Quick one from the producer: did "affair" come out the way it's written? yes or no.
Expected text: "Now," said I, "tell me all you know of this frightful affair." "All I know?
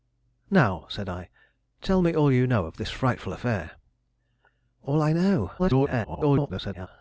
yes